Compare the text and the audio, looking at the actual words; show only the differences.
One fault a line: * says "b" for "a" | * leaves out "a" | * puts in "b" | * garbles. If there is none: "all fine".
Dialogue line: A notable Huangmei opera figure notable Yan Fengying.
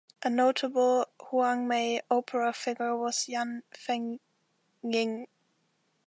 * says "was" for "notable"